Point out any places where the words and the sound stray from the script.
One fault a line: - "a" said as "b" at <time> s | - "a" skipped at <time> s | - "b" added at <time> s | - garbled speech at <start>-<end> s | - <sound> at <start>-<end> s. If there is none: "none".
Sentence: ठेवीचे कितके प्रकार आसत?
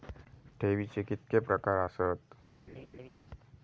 - laugh at 2.7-3.1 s